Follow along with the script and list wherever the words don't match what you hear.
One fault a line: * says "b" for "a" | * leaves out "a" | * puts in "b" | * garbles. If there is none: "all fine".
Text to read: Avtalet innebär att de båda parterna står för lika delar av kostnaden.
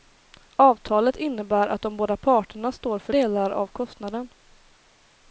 * leaves out "lika"